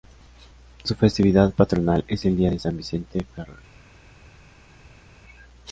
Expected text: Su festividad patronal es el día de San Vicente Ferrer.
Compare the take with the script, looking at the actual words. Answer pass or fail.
pass